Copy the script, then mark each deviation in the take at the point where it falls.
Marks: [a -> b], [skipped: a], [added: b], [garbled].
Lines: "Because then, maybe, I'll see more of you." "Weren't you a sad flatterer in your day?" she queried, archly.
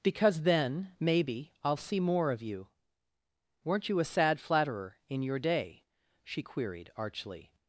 "Because then, maybe, I'll see more of you." "Weren't you a sad flatterer in your day?" she queried, archly.